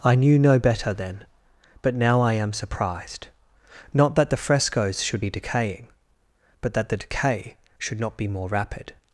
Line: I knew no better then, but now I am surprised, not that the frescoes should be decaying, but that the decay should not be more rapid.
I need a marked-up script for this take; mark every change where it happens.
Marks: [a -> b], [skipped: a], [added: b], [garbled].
I knew no better then, but now I am surprised, not that the frescoes should be decaying, but that the decay should not be more rapid.